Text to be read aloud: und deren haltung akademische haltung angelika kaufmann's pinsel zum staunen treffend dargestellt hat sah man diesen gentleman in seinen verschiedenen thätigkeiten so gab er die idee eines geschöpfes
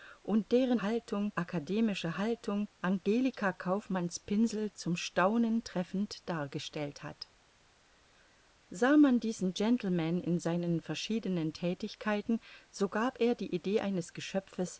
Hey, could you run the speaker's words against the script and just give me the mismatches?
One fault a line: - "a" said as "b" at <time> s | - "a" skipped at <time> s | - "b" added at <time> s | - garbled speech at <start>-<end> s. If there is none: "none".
none